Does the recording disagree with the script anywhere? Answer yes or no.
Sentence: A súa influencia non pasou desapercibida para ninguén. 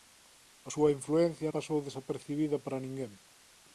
yes